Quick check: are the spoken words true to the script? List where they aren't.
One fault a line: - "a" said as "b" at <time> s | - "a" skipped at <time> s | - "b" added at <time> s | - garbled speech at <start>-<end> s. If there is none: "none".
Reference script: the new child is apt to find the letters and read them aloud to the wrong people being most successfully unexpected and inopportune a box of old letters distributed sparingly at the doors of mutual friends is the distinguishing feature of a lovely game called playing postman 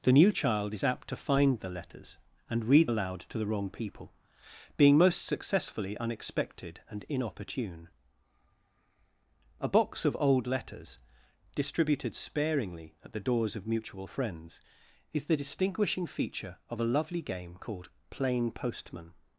- "them" skipped at 2.9 s